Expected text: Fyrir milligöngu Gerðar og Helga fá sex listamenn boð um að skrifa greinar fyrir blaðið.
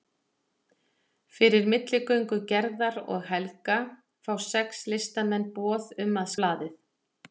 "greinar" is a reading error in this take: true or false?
true